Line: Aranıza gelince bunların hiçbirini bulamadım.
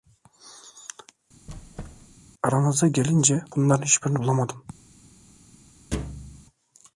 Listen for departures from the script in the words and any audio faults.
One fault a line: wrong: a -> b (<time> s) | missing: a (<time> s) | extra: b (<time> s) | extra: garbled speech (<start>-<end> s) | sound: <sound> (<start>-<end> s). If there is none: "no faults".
sound: squeak (1.5-2.2 s)
sound: thud (5.9-6.5 s)